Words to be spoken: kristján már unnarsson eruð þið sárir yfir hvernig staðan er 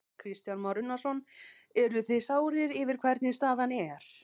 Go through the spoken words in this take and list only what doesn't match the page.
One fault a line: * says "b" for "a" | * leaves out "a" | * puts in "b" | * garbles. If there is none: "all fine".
all fine